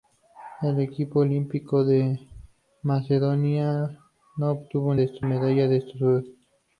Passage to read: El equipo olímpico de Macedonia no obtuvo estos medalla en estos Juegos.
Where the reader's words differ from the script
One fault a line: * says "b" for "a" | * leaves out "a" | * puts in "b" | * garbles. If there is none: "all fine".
all fine